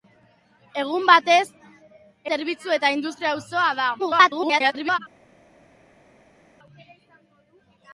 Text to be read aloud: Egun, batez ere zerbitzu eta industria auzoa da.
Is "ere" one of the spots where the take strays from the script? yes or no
yes